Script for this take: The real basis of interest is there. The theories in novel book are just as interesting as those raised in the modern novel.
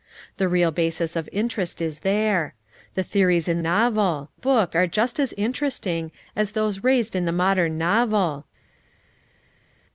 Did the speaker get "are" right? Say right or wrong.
right